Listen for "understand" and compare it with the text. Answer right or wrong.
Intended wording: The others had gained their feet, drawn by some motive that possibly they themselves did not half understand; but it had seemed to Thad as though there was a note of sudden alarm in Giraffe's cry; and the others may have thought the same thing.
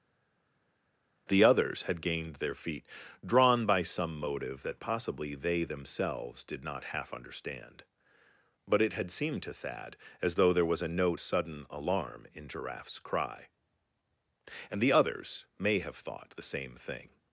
right